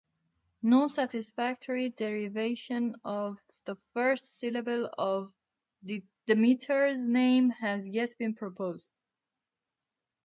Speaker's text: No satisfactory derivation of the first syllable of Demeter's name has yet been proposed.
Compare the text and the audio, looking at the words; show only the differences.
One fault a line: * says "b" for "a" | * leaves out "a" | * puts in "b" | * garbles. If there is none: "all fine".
all fine